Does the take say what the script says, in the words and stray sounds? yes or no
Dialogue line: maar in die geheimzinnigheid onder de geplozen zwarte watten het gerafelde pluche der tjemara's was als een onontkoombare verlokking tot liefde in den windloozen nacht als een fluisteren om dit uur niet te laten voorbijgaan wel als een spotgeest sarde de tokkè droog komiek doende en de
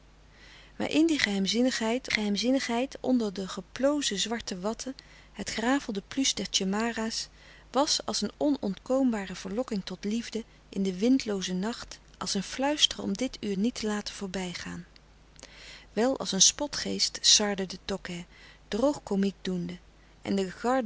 no